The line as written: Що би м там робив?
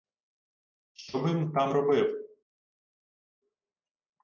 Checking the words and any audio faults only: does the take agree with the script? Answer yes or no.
yes